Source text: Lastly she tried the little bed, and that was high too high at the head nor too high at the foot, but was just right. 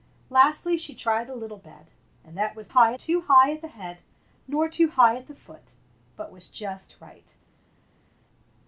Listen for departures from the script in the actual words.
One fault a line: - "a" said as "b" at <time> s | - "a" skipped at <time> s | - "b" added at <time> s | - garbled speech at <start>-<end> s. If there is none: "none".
none